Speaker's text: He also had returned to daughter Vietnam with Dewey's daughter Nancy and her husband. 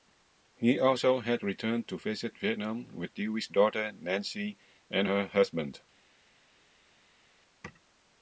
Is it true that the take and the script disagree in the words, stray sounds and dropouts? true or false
true